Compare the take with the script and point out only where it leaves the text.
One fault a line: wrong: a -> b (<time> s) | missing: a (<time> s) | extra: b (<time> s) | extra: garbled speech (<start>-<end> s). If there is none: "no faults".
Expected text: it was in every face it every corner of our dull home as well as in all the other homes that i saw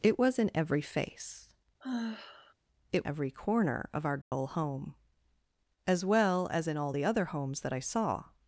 no faults